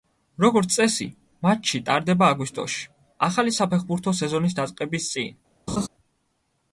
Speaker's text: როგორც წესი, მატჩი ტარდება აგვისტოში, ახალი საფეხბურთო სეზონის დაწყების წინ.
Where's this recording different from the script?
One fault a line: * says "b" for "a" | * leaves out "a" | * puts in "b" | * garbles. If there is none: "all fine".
all fine